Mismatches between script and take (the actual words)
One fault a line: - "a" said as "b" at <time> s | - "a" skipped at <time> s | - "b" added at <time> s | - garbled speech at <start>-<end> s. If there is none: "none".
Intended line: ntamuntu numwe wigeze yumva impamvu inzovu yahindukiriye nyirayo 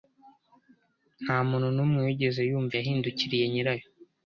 - "impamvu inzovu" skipped at 2.8 s